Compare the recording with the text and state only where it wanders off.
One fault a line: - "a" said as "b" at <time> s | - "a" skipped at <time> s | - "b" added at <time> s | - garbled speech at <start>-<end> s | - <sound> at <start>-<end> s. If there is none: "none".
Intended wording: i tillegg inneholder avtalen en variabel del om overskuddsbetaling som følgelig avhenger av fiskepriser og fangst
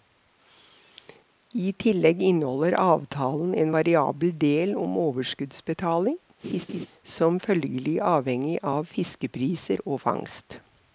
- laugh at 6.4-6.9 s